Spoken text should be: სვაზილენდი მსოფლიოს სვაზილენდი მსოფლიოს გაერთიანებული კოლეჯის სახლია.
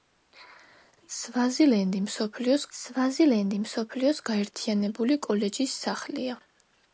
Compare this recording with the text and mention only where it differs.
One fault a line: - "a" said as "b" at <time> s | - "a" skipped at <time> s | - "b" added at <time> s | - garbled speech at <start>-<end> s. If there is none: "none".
none